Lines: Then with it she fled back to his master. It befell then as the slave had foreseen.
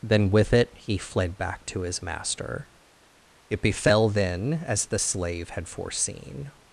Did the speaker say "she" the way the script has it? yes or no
no